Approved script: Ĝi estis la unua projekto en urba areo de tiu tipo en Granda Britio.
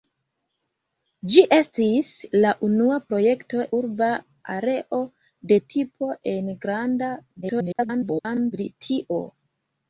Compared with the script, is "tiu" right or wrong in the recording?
wrong